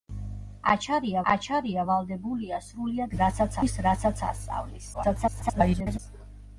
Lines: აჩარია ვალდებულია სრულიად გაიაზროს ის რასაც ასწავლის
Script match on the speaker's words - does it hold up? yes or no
no